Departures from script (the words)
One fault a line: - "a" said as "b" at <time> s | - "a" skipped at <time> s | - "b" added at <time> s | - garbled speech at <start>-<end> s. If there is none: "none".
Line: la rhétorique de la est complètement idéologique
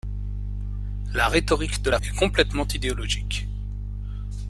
none